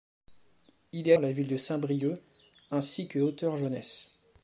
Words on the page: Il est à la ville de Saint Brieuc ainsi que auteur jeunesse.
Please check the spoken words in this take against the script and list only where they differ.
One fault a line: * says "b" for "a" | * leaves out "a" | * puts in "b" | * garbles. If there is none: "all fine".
all fine